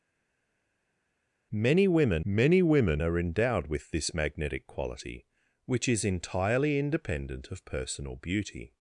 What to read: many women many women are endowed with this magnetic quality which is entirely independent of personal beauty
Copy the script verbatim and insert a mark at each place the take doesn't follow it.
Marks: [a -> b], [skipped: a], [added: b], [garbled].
many women many women are endowed with this magnetic quality which is entirely independent of personal beauty